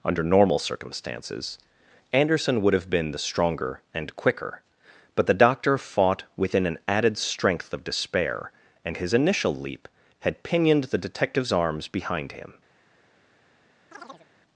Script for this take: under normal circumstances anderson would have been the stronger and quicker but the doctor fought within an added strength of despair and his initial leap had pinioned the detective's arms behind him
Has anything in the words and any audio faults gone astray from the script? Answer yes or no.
yes